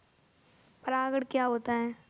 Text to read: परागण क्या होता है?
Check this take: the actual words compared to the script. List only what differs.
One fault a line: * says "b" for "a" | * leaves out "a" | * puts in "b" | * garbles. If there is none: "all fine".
all fine